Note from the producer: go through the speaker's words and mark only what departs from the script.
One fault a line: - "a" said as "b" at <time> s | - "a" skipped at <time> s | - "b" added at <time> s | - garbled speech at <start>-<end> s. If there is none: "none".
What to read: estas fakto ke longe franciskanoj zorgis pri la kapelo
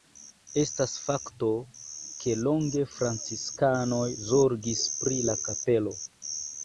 none